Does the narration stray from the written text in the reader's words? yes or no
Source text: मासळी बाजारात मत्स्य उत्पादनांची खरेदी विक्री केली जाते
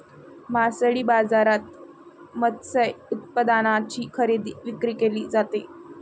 no